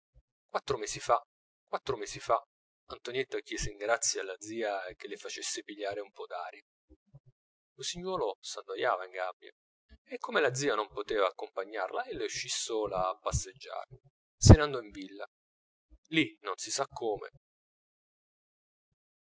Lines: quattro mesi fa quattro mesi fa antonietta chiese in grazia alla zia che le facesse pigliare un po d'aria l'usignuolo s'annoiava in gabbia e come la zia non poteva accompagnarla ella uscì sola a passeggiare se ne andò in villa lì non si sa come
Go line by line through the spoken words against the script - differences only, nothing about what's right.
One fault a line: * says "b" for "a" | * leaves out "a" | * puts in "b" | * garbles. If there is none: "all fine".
all fine